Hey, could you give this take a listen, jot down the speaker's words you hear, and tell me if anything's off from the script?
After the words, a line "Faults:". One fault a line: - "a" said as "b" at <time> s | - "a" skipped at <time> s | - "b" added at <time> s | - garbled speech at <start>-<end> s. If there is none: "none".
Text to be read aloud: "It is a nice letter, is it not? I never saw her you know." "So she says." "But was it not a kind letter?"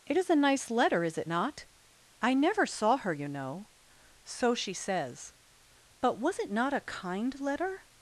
"It is a nice letter, is it not? I never saw her you know." "So she says." "But was it not a kind letter?"
Faults:
none